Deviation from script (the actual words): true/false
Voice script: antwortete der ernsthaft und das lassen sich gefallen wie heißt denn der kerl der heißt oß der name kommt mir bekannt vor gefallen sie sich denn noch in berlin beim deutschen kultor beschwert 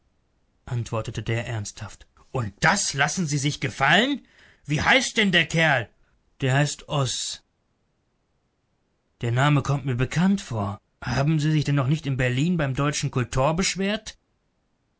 true